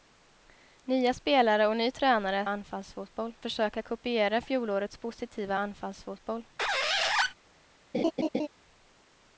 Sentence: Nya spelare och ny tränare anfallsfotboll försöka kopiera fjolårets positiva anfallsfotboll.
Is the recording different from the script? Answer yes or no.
no